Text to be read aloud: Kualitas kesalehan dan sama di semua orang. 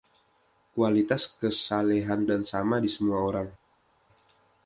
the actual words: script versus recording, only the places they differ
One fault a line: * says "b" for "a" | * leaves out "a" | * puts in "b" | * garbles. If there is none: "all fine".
all fine